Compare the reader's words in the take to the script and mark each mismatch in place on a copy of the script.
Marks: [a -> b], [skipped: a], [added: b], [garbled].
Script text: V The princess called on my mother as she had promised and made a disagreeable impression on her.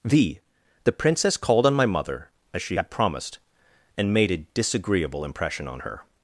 V The princess called on my mother as she had promised and made a disagreeable impression on her.